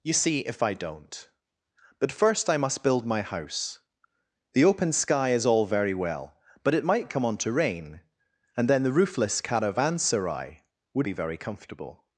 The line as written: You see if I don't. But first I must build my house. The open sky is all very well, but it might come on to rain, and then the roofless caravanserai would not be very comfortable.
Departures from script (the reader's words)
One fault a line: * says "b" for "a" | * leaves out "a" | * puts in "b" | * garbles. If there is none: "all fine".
* leaves out "not"